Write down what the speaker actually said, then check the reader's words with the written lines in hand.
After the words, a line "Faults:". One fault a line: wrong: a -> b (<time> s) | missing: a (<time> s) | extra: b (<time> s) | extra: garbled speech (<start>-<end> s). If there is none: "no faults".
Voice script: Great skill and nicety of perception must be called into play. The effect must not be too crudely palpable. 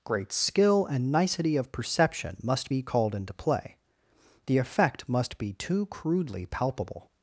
Great skill and nicety of perception must be called into play. The effect must be too crudely palpable.
Faults:
missing: not (5.4 s)